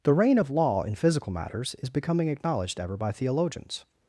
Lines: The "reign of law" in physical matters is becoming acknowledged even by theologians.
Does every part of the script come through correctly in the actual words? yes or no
no